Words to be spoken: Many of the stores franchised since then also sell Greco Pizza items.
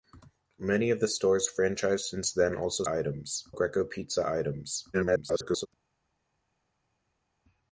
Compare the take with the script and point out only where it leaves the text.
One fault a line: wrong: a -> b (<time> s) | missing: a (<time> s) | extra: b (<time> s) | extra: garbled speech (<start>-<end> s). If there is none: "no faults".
wrong: sell -> items (2.9 s)
extra: garbled speech (4.9-5.7 s)